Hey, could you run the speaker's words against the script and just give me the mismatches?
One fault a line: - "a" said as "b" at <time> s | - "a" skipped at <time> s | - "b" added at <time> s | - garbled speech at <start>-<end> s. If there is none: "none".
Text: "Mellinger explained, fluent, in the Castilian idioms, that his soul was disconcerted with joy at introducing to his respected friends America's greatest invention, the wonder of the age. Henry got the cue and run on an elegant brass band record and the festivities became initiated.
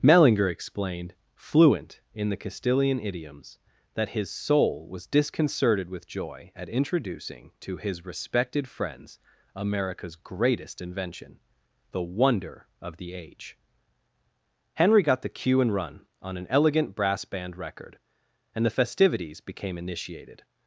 none